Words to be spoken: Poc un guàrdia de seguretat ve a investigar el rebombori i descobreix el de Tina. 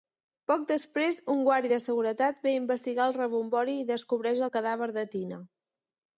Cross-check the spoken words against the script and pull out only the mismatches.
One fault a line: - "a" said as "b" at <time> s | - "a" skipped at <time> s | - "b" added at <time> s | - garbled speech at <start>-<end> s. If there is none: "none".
- "després" added at 0.7 s
- "cadàver" added at 4.6 s